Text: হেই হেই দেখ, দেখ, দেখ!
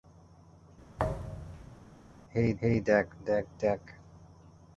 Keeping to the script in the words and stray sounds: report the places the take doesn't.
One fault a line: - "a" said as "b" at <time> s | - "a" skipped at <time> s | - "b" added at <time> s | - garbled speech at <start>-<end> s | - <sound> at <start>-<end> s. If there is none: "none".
- thud at 1.0-1.8 s